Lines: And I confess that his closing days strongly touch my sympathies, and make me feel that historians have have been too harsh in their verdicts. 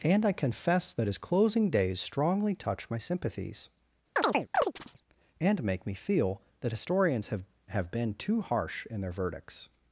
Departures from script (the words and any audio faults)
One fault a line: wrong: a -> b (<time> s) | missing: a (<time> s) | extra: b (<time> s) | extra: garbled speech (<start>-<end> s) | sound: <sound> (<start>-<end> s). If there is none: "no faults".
sound: chirp (4.2-5.0 s)